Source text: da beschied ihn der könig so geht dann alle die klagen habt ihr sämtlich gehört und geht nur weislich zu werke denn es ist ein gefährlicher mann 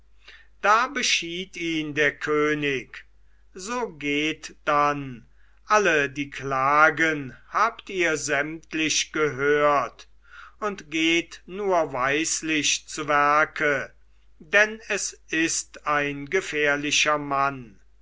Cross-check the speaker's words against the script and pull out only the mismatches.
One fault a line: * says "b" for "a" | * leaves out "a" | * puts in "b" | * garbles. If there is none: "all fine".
all fine